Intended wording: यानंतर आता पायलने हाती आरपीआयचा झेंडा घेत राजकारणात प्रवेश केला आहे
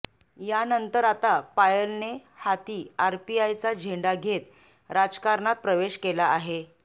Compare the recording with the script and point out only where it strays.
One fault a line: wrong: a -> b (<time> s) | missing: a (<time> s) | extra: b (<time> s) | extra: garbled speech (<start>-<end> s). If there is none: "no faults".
no faults